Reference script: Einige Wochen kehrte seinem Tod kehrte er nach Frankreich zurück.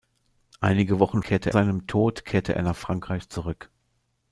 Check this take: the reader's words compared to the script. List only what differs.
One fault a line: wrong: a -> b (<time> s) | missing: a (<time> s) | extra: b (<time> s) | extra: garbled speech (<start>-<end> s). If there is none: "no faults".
no faults